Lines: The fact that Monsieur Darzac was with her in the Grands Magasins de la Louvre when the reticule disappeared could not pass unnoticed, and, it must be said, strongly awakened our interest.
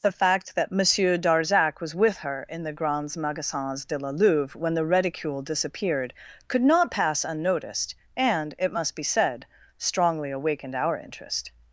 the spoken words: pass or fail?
pass